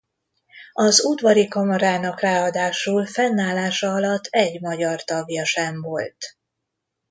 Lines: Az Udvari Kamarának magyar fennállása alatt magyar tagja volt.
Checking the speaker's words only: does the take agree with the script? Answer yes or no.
no